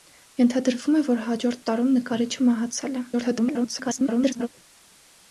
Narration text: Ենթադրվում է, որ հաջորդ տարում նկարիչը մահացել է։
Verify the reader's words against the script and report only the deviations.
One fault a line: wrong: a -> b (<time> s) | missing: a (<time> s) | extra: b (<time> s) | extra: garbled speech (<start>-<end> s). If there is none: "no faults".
extra: garbled speech (3.1-4.5 s)